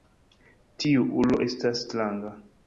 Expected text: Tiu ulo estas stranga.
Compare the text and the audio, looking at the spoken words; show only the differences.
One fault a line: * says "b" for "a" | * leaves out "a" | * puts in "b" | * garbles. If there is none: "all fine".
all fine